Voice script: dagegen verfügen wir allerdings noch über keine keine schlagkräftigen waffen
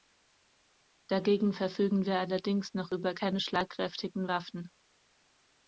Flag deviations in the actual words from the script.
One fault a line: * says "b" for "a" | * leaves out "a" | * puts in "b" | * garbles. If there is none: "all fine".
* leaves out "keine"